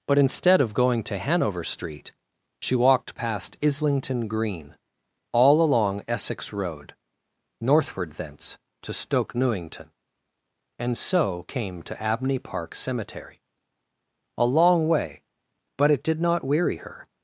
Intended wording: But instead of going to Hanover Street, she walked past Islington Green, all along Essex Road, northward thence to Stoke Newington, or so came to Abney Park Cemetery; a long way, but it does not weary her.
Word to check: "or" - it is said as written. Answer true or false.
false